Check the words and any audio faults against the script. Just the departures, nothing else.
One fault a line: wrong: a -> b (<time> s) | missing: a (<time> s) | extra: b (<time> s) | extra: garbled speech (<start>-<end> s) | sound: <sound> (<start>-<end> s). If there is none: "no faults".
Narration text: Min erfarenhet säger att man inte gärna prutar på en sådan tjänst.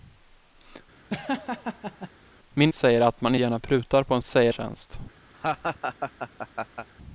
sound: laugh (1.1-2.1 s)
missing: erfarenhet (2.7 s)
missing: inte (3.3 s)
wrong: sådan -> säger (4.2 s)
sound: laugh (5.3-6.9 s)